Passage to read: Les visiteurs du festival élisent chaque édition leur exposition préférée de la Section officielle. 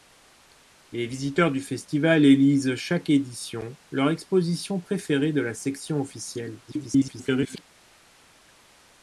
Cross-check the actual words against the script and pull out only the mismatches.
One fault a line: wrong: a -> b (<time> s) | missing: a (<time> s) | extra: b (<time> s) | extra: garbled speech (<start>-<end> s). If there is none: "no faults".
extra: garbled speech (6.7-7.6 s)